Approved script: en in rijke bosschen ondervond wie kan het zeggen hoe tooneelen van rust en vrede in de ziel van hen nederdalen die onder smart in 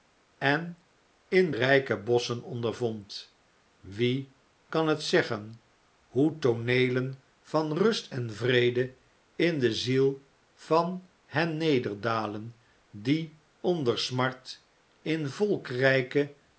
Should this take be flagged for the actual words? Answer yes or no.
no